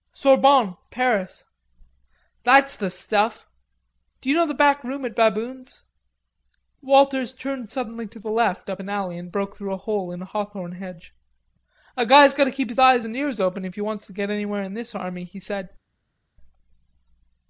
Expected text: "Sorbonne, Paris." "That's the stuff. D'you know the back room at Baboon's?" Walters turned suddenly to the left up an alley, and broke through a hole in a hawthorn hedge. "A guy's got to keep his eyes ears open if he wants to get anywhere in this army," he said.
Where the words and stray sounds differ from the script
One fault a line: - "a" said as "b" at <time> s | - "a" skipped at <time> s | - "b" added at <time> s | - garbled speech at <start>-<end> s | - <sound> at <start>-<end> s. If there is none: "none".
- "and" added at 13.0 s